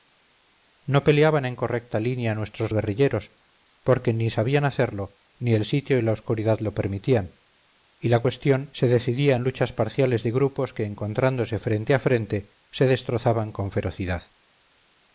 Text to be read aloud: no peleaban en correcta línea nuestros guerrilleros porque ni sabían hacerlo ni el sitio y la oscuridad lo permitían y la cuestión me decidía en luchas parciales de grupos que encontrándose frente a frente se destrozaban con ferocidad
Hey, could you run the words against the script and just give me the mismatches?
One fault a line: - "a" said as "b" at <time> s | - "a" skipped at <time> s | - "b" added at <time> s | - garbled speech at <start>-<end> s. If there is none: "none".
- "me" said as "se" at 8.7 s